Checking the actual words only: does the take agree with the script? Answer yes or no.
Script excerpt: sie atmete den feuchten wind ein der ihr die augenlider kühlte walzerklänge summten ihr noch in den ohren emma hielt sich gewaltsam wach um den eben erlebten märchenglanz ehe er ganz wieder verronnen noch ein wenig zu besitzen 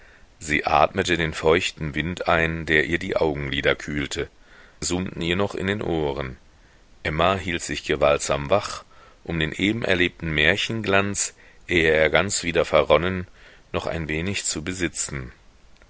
no